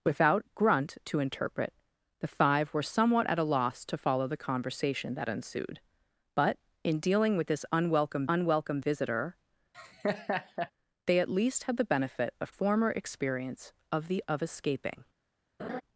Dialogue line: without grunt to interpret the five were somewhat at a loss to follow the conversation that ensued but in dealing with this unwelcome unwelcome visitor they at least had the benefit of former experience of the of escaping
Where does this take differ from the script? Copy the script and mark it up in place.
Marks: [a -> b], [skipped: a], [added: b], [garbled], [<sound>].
without grunt to interpret the five were somewhat at a loss to follow the conversation that ensued but in dealing with this unwelcome unwelcome visitor [laugh] they at least had the benefit of former experience of the of escaping [laugh]